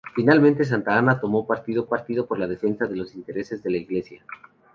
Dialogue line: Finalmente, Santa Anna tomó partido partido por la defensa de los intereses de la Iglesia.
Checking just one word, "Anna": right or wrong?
right